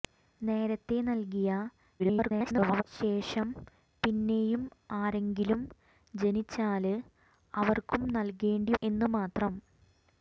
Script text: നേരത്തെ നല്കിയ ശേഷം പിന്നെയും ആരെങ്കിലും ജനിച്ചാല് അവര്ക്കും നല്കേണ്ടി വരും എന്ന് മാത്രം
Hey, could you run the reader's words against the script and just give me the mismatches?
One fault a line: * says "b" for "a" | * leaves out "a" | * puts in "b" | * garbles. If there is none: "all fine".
* garbles
* leaves out "വരും"